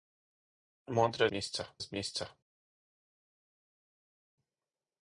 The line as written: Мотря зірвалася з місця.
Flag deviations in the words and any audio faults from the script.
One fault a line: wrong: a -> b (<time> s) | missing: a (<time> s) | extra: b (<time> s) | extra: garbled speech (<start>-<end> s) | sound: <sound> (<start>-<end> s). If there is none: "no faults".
wrong: зірвалася -> місця (1.3 s)